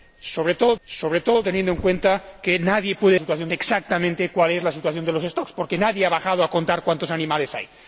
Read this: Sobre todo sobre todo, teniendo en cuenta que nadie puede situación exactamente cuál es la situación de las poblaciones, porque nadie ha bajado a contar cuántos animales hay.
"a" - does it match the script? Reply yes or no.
yes